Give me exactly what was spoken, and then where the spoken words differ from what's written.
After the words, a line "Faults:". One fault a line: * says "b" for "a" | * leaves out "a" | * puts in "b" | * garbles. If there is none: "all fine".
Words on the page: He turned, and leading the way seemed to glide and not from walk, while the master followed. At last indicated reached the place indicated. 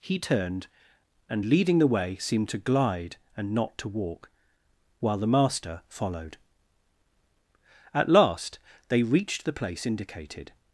He turned, and leading the way seemed to glide and not to walk, while the master followed. At last they reached the place indicated.
Faults:
* says "to" for "from"
* says "they" for "indicated"